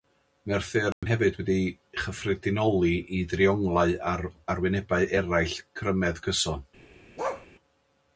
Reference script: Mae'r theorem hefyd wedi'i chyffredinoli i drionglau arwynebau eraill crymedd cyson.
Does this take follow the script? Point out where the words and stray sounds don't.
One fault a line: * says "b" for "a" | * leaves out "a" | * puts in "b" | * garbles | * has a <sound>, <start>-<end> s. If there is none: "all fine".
* has a dropout, 0.9-1.0 s
* puts in "ar"
* has a bark, 7.2-7.5 s